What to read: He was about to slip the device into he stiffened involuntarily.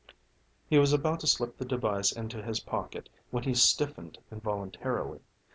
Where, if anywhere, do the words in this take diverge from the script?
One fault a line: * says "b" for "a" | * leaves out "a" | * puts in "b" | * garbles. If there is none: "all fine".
* puts in "his pocket when"